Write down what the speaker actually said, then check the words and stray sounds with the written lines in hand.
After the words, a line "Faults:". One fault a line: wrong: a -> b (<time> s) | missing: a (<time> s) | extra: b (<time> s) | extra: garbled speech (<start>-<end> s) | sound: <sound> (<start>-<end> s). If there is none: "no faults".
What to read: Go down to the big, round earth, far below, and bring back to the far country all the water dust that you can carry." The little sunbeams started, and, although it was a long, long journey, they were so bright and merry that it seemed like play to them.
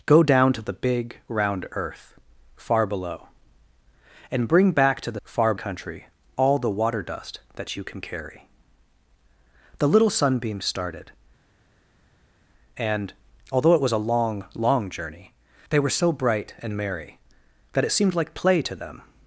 Go down to the big, round earth, far below, and bring back to the far country all the water dust that you can carry." The little sunbeams started, and, although it was a long, long journey, they were so bright and merry that it seemed like play to them.
Faults:
no faults